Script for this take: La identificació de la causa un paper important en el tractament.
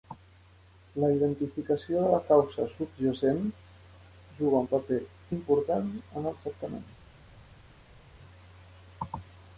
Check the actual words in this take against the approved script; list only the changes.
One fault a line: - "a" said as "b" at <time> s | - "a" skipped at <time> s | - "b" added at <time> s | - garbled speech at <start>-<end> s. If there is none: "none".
- "subjacent juga" added at 2.8 s